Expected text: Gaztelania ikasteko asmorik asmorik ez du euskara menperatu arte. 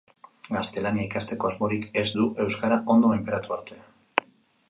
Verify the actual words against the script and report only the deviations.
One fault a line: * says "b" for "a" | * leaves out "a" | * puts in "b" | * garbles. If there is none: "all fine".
* leaves out "asmorik"
* puts in "ondo"